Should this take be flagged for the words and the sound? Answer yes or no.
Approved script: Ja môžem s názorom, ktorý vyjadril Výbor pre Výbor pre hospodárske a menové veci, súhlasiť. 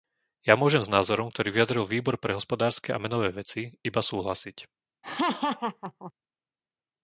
yes